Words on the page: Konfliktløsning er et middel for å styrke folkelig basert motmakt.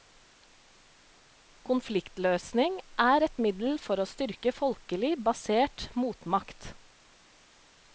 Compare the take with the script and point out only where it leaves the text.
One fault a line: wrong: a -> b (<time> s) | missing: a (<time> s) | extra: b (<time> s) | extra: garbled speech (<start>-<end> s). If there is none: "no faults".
no faults